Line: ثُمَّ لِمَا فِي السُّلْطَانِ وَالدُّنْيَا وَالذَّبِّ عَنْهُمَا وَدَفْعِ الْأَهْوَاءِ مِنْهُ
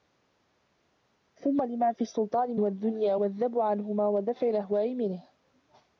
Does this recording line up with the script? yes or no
yes